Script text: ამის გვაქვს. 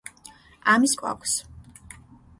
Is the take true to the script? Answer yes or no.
yes